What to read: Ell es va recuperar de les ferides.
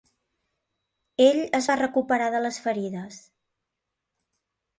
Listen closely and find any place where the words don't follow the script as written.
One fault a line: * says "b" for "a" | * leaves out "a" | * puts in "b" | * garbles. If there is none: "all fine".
all fine